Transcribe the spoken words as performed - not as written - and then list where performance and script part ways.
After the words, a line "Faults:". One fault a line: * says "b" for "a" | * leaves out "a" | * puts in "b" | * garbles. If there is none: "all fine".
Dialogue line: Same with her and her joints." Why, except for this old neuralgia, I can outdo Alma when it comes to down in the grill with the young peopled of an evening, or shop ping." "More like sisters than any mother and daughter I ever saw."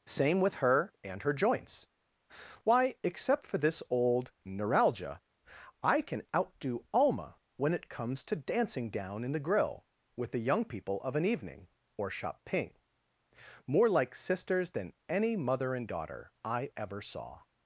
Same with her and her joints." Why, except for this old neuralgia, I can outdo Alma when it comes to dancing down in the grill with the young people of an evening, or shop ping." "More like sisters than any mother and daughter I ever saw."
Faults:
* puts in "dancing"
* says "people" for "peopled"